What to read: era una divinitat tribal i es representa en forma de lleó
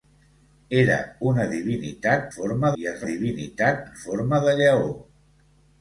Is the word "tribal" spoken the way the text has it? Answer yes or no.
no